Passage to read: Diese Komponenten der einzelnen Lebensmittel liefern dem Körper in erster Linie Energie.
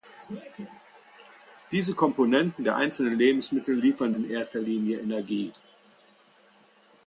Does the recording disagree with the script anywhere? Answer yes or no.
yes